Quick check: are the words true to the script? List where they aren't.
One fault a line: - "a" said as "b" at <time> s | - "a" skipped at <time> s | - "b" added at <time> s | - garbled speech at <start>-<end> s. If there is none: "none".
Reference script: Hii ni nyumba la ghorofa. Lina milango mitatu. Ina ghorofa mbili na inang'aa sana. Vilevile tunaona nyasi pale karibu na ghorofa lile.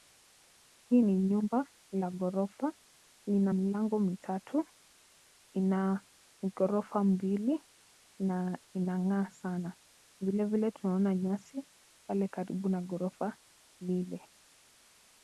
none